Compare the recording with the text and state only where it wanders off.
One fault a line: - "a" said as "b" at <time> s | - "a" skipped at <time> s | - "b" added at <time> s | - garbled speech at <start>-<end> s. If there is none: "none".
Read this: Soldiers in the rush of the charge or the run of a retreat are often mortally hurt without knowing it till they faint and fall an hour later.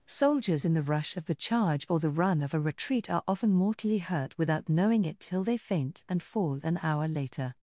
none